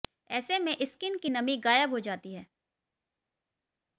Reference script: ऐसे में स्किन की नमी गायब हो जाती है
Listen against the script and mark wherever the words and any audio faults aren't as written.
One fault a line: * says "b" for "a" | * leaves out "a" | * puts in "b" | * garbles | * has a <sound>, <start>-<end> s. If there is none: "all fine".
all fine